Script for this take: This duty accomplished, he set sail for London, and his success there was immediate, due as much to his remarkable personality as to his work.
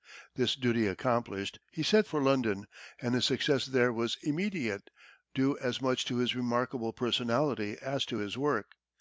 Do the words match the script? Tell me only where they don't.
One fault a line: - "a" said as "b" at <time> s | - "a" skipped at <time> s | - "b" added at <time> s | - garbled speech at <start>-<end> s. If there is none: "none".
- "sail" skipped at 2.1 s